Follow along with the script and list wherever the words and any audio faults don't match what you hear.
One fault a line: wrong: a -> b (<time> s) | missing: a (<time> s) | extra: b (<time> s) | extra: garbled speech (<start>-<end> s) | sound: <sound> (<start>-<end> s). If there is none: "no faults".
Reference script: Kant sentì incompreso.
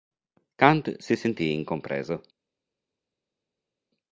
extra: si (1.0 s)